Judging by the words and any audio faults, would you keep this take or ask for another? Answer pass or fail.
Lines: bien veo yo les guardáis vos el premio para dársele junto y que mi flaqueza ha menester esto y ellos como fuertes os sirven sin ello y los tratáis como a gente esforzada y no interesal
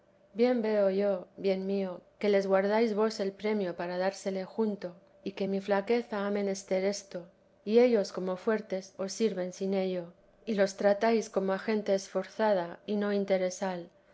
fail